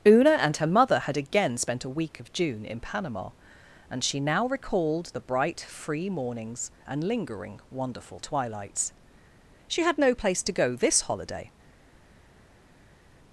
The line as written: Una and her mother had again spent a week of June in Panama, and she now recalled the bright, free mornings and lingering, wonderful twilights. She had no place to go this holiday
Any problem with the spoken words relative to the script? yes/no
no